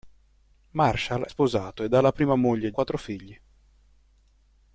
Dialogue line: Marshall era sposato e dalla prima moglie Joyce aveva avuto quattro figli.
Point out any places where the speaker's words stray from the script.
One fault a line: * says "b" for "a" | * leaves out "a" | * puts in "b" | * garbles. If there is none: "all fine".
* leaves out "era"
* leaves out "Joyce aveva avuto"